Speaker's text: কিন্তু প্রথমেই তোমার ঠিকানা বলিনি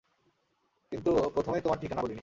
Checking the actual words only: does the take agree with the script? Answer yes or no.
yes